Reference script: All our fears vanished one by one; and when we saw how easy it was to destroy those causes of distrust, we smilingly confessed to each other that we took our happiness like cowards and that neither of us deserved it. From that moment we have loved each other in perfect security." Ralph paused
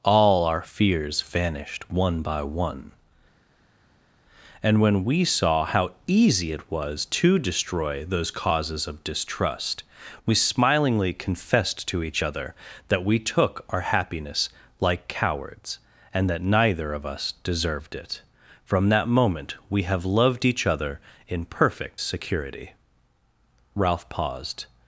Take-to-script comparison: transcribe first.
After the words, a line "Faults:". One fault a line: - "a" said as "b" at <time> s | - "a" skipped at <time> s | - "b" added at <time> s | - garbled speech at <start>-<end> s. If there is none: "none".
All our fears vanished one by one; and when we saw how easy it was to destroy those causes of distrust, we smilingly confessed to each other that we took our happiness like cowards and that neither of us deserved it. From that moment we have loved each other in perfect security." Ralph paused
Faults:
none